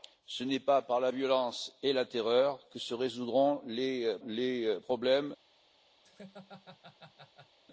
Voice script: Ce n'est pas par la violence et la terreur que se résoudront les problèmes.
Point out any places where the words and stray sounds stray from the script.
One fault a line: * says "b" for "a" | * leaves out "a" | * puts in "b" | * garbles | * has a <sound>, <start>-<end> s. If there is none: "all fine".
* puts in "les"
* has a laugh, 6.0-7.6 s